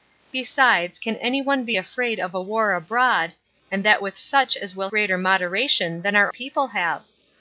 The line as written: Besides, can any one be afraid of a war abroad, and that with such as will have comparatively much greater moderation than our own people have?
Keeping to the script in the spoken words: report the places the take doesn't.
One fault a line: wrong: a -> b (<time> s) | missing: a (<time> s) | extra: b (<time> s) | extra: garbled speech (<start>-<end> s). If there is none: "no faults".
missing: have comparatively much (4.9 s)
missing: own (6.3 s)